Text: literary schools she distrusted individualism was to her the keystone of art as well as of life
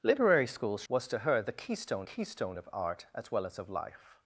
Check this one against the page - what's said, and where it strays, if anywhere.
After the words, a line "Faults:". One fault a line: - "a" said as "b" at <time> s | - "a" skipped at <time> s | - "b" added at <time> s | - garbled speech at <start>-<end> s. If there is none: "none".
literary schools was to her the keystone keystone of art as well as of life
Faults:
- "she distrusted individualism" skipped at 0.8 s
- "keystone" added at 2.0 s